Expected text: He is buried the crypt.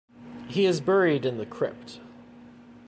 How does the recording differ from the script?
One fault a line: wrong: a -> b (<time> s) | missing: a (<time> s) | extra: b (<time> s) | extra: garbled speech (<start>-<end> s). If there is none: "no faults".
extra: in (1.2 s)